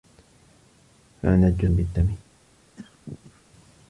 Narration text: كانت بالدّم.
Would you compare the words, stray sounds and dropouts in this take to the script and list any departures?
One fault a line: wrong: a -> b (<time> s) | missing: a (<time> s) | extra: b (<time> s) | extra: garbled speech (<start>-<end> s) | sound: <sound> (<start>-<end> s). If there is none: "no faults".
sound: cough (2.8-3.5 s)